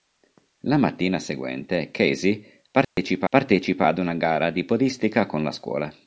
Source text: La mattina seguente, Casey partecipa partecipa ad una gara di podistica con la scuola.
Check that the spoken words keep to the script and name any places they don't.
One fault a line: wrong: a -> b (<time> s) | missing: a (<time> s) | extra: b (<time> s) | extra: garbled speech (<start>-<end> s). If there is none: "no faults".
no faults